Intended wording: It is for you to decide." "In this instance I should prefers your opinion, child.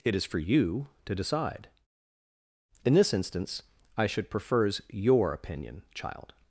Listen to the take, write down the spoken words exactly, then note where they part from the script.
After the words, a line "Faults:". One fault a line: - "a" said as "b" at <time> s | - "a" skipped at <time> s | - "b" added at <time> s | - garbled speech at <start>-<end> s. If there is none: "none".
It is for you to decide." "In this instance I should prefers your opinion, child.
Faults:
none